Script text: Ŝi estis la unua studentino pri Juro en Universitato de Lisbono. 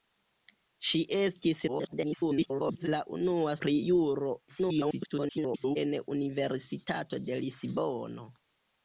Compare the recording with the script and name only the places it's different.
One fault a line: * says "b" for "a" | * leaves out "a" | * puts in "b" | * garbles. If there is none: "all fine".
* garbles
* leaves out "studentino"
* garbles